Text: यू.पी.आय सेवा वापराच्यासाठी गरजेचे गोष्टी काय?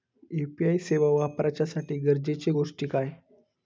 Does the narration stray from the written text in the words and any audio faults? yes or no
no